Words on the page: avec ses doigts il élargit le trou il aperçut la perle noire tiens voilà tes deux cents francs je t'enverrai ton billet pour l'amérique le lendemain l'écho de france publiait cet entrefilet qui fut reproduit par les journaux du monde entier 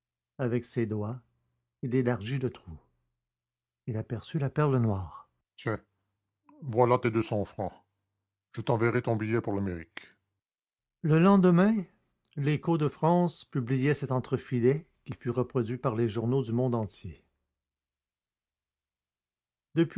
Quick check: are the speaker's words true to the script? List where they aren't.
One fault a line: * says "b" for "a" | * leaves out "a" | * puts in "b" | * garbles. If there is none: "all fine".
all fine